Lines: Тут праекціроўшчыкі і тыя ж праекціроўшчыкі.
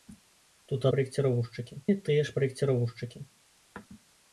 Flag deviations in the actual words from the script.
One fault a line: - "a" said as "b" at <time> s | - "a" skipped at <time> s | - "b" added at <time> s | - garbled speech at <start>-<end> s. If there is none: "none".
none